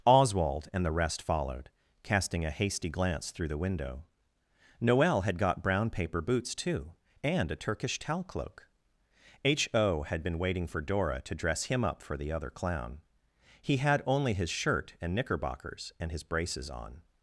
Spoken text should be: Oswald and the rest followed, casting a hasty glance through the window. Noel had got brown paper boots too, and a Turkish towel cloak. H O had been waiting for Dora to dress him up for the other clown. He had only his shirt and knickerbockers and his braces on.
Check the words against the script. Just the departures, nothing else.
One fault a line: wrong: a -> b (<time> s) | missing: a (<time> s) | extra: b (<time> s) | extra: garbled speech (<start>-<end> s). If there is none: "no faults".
no faults